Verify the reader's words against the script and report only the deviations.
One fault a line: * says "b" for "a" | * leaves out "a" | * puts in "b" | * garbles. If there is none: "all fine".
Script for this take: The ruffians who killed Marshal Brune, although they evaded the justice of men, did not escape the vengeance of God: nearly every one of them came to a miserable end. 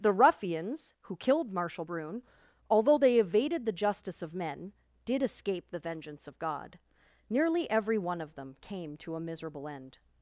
* leaves out "not"